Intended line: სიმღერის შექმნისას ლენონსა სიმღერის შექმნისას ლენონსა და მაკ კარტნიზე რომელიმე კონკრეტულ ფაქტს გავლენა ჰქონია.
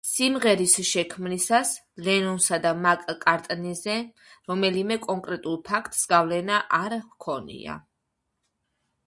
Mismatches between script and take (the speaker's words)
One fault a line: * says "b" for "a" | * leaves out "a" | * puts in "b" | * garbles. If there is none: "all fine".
* leaves out "სიმღერის შექმნისას ლენონსა"
* puts in "არ"